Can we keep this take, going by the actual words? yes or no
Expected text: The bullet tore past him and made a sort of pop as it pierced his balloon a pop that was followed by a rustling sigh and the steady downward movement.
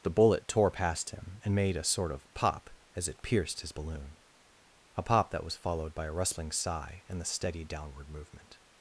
yes